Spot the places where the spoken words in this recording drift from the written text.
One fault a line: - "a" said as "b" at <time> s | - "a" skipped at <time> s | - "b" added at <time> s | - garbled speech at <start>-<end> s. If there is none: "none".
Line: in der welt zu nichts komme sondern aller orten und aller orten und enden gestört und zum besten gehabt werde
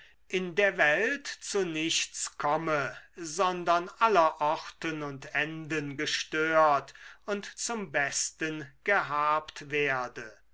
- "aller orten und" skipped at 5.3 s